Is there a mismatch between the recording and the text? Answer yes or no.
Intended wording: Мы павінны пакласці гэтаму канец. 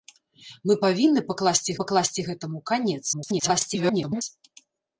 yes